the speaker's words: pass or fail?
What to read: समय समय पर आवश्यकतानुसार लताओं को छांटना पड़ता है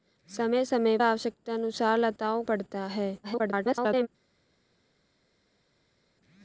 fail